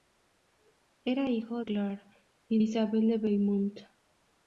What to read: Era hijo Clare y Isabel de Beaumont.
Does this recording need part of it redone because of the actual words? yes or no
no